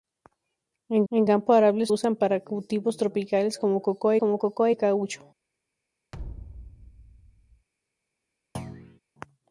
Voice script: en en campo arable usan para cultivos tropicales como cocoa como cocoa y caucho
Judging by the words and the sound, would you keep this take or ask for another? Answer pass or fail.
fail